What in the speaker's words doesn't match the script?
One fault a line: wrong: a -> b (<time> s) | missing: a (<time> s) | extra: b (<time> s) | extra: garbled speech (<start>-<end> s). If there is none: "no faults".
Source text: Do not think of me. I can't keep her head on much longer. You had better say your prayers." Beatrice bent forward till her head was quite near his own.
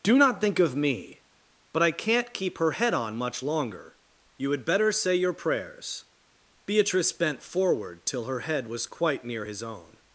extra: But (1.7 s)